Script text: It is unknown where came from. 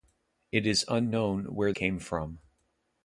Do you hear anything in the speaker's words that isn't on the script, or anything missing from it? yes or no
no